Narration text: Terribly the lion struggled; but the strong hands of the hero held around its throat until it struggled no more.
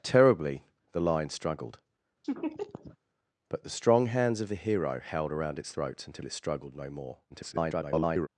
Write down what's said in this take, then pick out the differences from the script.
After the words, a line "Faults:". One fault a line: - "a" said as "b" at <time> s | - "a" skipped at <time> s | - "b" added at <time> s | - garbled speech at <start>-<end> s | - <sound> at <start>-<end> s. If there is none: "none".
Terribly the lion struggled; but the strong hands of the hero held around its throat until it struggled no more. [garbled]
Faults:
- laugh at 2.2-3.0 s
- garbled speech at 7.3-8.3 s